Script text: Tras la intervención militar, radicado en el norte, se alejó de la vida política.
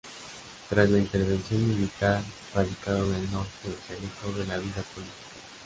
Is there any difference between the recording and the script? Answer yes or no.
no